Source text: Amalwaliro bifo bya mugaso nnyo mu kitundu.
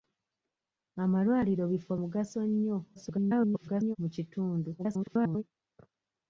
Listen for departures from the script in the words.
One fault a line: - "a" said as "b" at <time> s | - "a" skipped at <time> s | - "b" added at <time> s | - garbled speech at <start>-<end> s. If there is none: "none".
- "bya" skipped at 1.9 s
- garbled speech at 3.0-4.0 s
- garbled speech at 4.8-5.4 s